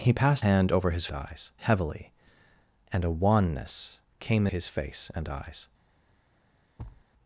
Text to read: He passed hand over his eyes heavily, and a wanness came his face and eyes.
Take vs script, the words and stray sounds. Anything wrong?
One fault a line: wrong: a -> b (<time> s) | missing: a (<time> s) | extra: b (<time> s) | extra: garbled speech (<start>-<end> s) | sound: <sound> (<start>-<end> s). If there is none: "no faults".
sound: thud (6.8-7.0 s)